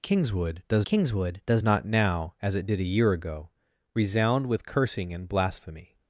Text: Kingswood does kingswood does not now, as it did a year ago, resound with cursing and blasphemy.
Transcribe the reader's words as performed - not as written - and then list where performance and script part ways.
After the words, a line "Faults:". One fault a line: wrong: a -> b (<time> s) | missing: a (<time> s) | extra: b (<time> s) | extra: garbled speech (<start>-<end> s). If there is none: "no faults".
Kingswood does kingswood does not now, as it did a year ago, resound with cursing and blasphemy.
Faults:
no faults